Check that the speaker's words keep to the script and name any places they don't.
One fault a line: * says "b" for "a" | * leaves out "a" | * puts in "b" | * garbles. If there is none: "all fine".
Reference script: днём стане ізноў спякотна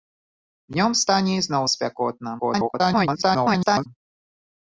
* garbles